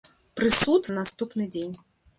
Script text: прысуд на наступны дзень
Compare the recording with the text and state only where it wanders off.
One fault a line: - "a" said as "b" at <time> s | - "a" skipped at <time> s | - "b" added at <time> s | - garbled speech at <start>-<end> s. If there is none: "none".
none